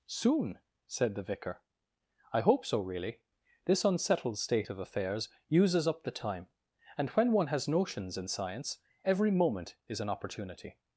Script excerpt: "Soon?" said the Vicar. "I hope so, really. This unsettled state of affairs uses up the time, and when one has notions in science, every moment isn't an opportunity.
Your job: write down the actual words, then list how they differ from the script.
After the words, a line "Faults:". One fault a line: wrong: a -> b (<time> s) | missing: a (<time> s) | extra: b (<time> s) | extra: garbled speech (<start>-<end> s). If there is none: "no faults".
"Soon?" said the Vicar. "I hope so, really. This unsettled state of affairs uses up the time, and when one has notions in science, every moment is an opportunity.
Faults:
wrong: isn't -> is (9.9 s)